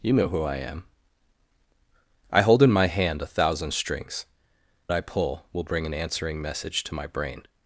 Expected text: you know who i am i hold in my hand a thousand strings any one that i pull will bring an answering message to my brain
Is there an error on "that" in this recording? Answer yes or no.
yes